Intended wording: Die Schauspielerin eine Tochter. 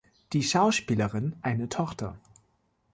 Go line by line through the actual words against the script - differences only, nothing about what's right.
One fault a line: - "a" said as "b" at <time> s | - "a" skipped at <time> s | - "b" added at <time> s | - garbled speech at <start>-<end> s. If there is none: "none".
none